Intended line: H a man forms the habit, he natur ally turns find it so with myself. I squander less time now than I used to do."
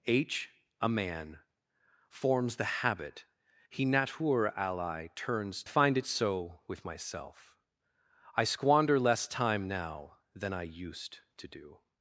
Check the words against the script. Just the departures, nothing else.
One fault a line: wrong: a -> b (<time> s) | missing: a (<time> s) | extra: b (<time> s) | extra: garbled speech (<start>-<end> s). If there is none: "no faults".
no faults